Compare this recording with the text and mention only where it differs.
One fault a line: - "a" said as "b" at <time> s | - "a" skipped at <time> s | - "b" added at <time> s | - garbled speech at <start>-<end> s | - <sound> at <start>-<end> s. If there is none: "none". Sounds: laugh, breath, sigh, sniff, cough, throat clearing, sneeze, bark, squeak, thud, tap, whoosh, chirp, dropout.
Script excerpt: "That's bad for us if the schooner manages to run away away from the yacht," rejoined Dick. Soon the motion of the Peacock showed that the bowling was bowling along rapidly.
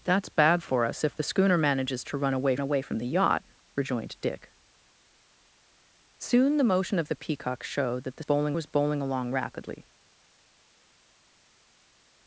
none